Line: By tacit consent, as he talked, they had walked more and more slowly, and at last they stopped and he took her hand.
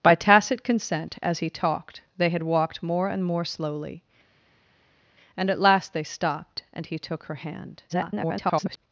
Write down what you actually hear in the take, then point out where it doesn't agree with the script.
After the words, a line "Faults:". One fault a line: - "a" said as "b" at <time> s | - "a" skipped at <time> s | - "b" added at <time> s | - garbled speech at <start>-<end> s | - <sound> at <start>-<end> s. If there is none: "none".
By tacit consent, as he talked, they had walked more and more slowly, and at last they stopped and he took her hand. [garbled]
Faults:
- garbled speech at 7.9-8.8 s